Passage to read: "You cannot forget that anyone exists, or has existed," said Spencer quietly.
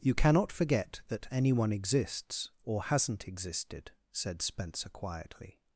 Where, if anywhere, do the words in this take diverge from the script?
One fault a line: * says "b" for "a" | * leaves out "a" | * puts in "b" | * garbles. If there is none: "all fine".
* says "hasn't" for "has"